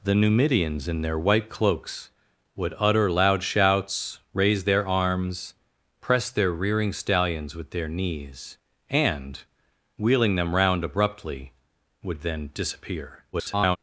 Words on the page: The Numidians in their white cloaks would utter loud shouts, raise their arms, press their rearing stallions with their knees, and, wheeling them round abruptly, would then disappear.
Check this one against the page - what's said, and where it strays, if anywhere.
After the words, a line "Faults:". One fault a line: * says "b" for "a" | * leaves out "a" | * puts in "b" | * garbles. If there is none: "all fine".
The Numidians in their white cloaks would utter loud shouts, raise their arms, press their rearing stallions with their knees, and, wheeling them round abruptly, would then disappear. [garbled]
Faults:
* garbles